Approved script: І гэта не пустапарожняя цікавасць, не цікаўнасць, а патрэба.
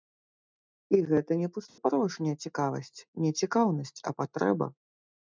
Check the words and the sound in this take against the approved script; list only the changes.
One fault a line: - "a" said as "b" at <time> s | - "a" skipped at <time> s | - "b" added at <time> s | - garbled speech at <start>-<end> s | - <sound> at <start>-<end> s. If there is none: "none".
- dropout at 1.7-1.8 s